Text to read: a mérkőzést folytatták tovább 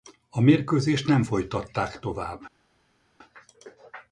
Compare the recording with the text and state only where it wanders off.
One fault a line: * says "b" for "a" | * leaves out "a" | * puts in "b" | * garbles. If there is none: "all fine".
* puts in "nem"